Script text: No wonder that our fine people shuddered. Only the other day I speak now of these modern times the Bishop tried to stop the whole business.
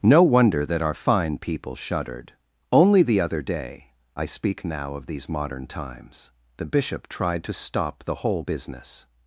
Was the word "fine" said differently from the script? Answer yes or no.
no